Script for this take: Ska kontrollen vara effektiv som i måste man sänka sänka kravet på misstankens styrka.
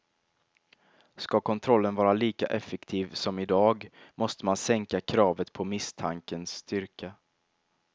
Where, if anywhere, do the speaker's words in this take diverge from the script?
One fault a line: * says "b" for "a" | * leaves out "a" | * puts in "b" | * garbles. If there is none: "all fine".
* puts in "lika"
* puts in "dag"
* leaves out "sänka"